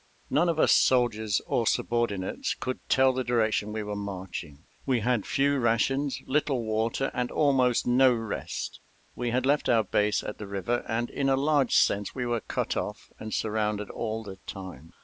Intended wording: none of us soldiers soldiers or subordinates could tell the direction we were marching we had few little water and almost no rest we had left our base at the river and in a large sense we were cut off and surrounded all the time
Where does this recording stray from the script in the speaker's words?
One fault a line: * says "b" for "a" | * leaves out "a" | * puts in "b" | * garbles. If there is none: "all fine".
* leaves out "soldiers"
* puts in "rations"